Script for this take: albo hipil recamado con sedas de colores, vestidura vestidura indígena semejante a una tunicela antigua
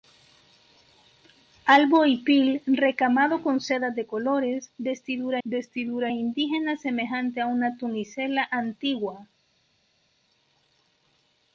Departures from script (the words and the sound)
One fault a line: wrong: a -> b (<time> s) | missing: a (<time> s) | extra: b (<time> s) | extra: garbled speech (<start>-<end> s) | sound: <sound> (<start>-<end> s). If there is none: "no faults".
no faults